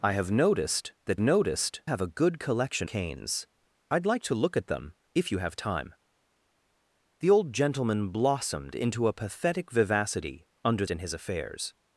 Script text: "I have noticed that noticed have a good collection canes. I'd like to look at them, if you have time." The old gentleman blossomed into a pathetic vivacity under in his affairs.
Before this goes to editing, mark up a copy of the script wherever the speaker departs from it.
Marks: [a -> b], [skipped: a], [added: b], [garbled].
"I have noticed that noticed have a good collection canes. I'd like to look at them, if you have time." The old gentleman blossomed into a pathetic vivacity under in his affairs.